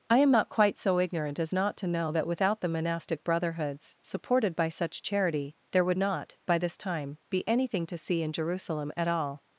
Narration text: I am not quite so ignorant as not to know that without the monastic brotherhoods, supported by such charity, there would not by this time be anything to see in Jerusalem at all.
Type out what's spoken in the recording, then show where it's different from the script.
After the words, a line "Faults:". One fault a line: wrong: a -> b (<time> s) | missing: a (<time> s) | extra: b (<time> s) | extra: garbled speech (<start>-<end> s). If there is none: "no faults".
I am not quite so ignorant as not to know that without the monastic brotherhoods, supported by such charity, there would not by this time be anything to see in Jerusalem at all.
Faults:
no faults